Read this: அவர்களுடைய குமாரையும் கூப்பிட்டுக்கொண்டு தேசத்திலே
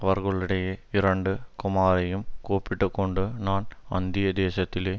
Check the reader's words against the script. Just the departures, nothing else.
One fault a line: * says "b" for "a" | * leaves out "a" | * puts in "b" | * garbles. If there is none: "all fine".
* puts in "இரண்டு"
* puts in "நான் அந்நிய"